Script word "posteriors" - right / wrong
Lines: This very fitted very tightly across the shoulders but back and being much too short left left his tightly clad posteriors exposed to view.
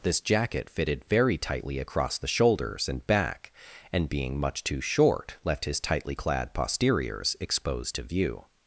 right